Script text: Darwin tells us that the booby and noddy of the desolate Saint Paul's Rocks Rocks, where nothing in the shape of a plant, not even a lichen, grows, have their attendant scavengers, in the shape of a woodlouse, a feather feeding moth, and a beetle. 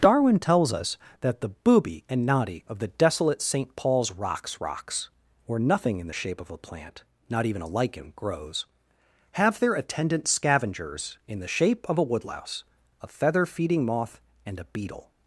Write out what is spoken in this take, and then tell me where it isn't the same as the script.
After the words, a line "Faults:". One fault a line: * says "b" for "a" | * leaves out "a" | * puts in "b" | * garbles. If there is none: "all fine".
Darwin tells us that the booby and noddy of the desolate Saint Paul's Rocks Rocks, where nothing in the shape of a plant, not even a lichen, grows, have their attendant scavengers, in the shape of a woodlouse, a feather feeding moth, and a beetle.
Faults:
all fine